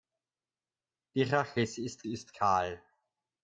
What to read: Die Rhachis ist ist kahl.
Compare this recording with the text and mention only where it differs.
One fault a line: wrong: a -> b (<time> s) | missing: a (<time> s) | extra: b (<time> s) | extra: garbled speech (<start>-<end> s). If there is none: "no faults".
no faults